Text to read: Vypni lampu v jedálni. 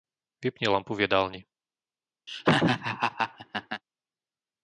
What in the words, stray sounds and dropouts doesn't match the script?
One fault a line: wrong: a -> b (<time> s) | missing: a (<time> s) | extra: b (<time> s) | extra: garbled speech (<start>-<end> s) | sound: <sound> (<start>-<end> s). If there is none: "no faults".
sound: laugh (2.3-3.8 s)